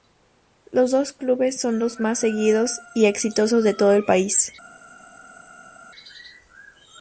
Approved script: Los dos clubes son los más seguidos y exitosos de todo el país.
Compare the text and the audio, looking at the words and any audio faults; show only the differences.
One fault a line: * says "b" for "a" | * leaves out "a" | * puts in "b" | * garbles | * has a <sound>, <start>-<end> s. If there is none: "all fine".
all fine